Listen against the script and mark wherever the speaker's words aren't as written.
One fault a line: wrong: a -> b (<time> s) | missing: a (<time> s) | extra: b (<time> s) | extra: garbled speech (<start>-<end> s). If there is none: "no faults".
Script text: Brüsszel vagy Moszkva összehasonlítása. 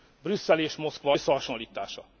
wrong: vagy -> és (0.6 s)